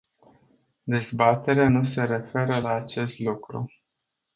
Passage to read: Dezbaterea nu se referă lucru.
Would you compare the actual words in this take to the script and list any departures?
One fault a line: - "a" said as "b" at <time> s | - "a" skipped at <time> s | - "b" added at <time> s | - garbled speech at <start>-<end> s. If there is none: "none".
- "la acest" added at 2.6 s